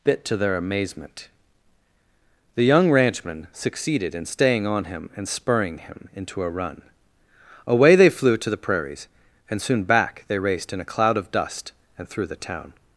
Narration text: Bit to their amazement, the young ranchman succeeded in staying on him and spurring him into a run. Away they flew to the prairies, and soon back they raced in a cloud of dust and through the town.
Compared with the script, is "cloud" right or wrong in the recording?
right